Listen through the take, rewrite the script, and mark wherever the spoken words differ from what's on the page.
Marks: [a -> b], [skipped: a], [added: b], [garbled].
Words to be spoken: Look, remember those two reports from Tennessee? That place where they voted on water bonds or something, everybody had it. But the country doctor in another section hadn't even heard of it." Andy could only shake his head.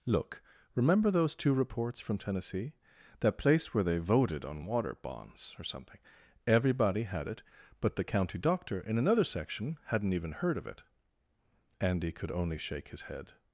Look, remember those two reports from Tennessee? That place where they voted on water bonds or something, everybody had it. But the [country -> county] doctor in another section hadn't even heard of it." Andy could only shake his head.